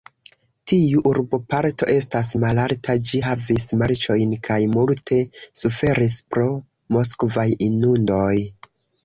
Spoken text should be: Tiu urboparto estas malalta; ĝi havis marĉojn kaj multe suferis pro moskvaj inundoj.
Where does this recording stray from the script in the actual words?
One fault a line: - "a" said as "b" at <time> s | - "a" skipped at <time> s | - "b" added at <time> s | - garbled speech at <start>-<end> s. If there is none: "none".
none